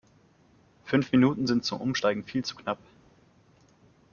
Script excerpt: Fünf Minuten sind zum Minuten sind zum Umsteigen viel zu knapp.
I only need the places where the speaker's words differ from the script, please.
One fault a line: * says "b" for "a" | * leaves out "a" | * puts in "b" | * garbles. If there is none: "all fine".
* leaves out "Minuten sind zum"